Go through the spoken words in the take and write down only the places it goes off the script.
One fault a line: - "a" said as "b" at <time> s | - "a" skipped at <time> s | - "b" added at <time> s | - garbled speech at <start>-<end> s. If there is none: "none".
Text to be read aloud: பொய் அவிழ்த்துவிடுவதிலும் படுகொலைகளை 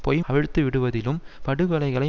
none